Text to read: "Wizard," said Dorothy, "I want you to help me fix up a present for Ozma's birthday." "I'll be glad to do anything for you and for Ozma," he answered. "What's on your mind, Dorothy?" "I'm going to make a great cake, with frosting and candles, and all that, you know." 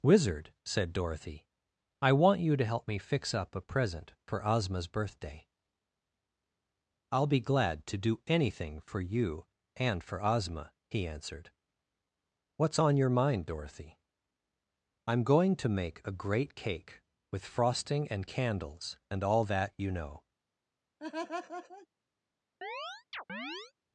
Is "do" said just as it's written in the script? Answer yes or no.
yes